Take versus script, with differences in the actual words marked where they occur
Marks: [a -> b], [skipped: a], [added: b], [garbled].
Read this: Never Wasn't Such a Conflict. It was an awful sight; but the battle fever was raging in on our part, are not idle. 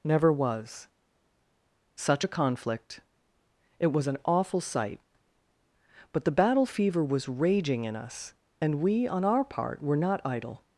Never [Wasn't -> Was] Such a Conflict. It was an awful sight; but the battle fever was raging in [added: us and we] on our part, [are -> were] not idle.